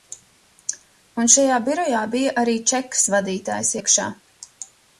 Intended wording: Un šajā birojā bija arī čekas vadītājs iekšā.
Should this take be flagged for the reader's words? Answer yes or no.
no